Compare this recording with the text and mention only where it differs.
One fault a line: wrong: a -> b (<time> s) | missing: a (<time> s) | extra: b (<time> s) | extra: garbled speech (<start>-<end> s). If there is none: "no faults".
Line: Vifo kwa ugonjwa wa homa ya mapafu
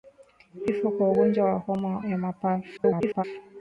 extra: garbled speech (2.8-3.2 s)